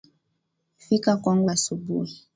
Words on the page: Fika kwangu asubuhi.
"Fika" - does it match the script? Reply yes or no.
yes